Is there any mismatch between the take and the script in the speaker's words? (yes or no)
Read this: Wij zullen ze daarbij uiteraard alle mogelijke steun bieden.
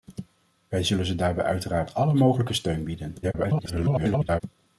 yes